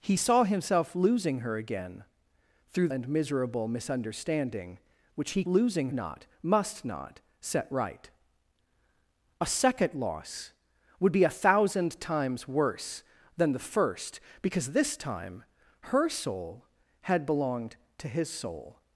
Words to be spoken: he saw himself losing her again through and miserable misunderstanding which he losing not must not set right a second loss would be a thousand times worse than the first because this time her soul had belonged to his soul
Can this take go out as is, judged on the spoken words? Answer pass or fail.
pass